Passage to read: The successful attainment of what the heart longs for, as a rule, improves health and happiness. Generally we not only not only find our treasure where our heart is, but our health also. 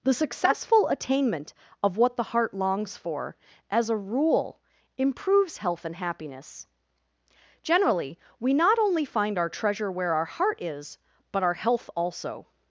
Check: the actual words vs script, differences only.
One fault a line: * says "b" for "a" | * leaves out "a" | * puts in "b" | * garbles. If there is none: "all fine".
* leaves out "not only"